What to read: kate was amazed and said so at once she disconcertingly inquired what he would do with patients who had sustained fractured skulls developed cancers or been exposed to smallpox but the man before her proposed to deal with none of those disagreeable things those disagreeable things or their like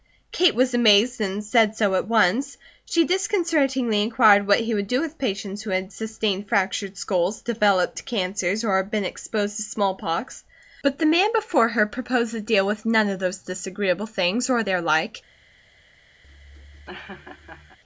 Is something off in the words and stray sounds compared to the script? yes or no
yes